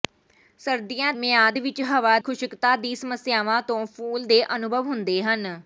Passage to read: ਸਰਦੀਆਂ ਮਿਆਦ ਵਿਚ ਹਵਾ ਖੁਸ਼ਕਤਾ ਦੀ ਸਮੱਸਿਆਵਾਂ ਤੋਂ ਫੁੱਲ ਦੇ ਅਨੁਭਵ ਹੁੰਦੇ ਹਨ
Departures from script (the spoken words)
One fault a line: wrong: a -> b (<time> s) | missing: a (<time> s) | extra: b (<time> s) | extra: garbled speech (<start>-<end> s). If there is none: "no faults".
no faults